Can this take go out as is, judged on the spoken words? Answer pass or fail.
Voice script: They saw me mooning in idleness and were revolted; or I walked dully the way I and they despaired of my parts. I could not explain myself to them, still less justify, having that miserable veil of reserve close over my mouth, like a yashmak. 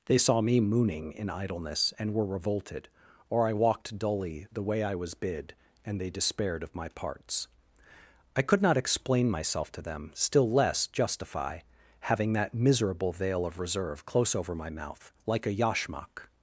fail